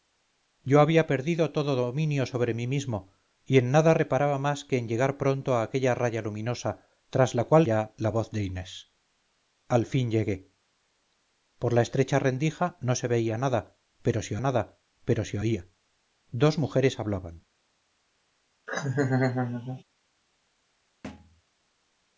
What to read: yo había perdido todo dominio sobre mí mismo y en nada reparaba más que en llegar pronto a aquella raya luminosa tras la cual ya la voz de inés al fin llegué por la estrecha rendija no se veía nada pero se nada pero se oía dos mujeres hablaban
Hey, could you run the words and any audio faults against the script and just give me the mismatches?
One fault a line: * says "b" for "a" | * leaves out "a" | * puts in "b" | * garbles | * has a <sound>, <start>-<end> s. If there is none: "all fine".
* has a laugh, 18.7-19.8 s
* has a thud, 21.0-21.4 s